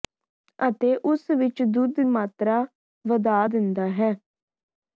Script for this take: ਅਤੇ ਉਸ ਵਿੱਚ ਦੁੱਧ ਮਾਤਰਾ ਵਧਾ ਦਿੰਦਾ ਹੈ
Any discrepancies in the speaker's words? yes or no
no